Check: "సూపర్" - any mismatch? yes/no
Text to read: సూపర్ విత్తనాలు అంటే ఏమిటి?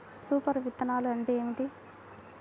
no